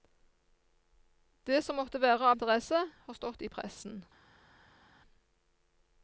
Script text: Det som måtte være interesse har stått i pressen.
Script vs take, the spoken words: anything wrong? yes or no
no